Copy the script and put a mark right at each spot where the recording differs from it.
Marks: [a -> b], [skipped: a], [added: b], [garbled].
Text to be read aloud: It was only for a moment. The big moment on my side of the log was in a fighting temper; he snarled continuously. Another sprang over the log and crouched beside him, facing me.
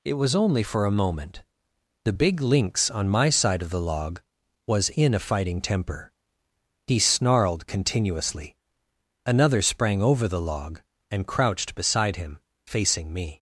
It was only for a moment. The big [moment -> lynx] on my side of the log was in a fighting temper; he snarled continuously. Another sprang over the log and crouched beside him, facing me.